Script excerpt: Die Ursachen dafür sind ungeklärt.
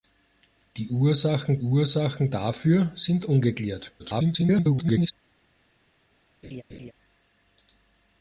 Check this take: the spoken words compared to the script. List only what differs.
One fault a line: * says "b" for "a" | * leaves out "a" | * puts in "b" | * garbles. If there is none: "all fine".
* puts in "Ursachen"
* garbles